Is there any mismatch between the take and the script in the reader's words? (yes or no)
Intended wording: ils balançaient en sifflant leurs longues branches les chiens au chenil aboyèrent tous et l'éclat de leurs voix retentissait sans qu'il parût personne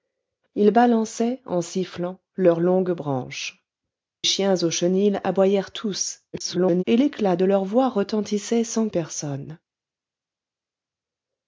yes